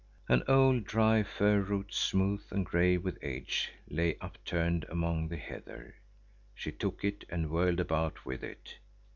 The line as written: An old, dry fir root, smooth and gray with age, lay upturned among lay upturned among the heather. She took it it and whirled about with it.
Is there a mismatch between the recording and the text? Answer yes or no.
yes